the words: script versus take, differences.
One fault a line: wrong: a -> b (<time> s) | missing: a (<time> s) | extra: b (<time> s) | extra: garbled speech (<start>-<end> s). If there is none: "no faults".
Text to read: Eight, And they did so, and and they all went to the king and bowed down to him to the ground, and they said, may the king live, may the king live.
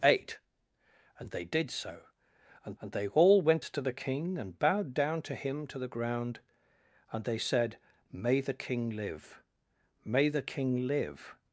no faults